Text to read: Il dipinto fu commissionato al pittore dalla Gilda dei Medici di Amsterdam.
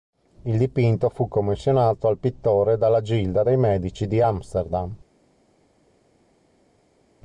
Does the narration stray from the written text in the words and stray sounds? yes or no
no